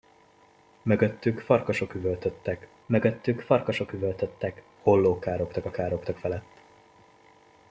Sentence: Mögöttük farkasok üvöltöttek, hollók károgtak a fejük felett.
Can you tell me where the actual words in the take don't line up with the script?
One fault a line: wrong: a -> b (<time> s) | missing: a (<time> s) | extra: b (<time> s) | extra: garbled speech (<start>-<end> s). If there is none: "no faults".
extra: mögöttük farkasok üvöltöttek (2.9 s)
wrong: fejük -> károgtak (5.7 s)